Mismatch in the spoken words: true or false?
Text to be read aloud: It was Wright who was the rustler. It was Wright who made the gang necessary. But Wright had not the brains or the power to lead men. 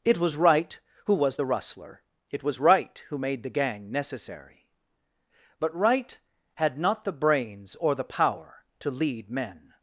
false